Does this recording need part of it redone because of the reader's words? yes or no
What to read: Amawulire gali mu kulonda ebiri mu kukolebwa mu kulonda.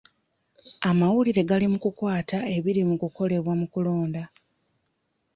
yes